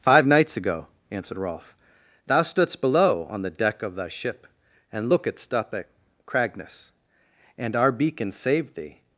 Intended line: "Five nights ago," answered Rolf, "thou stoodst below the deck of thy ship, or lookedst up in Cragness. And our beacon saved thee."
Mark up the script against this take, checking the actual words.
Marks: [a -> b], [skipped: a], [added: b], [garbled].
"Five nights ago," answered Rolf, "thou stoodst below [added: on] the deck of thy ship, [or -> and] lookedst up [in -> at] Cragness. And our beacon saved thee."